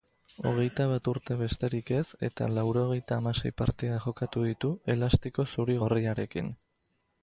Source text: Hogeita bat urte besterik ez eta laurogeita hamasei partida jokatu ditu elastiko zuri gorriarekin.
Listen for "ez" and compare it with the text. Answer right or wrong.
right